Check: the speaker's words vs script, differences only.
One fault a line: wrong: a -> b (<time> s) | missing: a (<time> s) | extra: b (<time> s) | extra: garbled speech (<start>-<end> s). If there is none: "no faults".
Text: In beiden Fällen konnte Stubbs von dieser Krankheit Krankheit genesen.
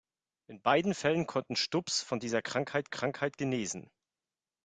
no faults